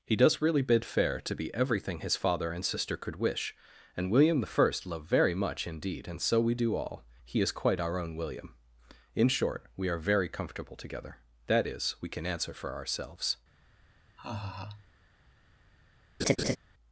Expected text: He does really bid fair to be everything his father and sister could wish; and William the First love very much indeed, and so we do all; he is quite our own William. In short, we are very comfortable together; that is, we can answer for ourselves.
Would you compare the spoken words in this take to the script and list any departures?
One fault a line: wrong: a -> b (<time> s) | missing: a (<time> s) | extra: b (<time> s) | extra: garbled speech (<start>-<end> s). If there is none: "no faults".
no faults